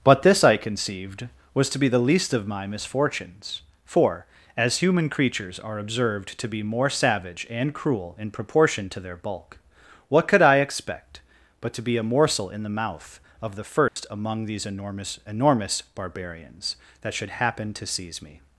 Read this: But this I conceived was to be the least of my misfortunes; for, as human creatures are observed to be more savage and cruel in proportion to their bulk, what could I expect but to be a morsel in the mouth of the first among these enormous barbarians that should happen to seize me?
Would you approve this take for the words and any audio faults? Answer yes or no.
no